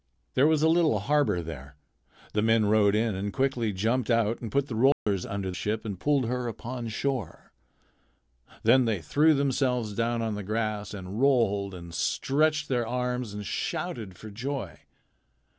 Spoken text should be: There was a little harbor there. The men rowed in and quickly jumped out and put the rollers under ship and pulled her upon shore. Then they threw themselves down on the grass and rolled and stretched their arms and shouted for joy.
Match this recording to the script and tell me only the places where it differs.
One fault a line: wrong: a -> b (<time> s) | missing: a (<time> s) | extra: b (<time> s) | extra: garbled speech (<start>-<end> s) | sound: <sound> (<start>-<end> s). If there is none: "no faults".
sound: dropout (4.9-5.1 s)